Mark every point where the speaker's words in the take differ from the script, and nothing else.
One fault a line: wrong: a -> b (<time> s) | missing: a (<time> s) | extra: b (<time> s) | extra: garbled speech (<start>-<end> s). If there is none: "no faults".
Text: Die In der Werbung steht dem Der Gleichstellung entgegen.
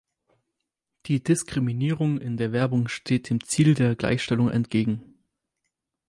extra: Diskriminierung (1.2 s)
extra: Ziel (3.4 s)